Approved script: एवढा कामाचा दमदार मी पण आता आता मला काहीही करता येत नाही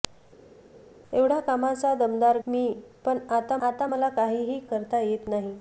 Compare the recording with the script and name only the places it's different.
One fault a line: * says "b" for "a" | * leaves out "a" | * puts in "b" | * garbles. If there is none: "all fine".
all fine